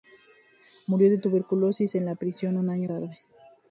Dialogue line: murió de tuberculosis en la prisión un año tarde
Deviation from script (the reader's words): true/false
false